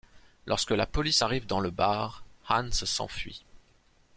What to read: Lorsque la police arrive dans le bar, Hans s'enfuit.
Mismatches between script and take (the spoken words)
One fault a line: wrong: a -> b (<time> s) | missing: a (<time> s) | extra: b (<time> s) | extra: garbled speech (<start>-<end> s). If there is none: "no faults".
no faults